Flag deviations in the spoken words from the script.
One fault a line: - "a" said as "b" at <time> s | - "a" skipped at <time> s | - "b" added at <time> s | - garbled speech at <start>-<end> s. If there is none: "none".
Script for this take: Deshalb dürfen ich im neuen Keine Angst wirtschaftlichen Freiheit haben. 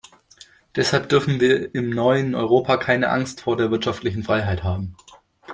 - "ich" said as "wir" at 1.4 s
- "Europa" added at 2.3 s
- "vor der" added at 3.4 s